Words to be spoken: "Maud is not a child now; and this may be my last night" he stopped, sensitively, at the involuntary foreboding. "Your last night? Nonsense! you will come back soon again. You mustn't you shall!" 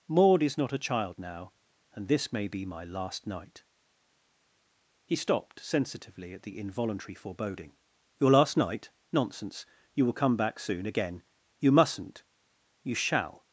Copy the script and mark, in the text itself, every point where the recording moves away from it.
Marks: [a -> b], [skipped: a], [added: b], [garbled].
"Maud is not a child now; and this may be my last night" he stopped, sensitively, at the involuntary foreboding. "Your last night? Nonsense! you will come back soon again. You mustn't you shall!"